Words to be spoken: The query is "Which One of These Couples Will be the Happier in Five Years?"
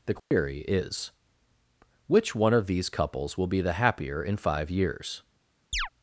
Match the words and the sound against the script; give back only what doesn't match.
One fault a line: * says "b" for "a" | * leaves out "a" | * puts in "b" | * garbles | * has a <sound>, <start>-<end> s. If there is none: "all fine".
* has a dropout, 0.2-0.3 s
* has a chirp, 5.7-5.9 s